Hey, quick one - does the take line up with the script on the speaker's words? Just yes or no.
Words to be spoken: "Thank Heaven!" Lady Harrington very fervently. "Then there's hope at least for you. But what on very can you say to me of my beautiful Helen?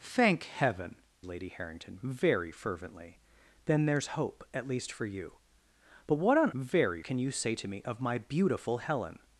yes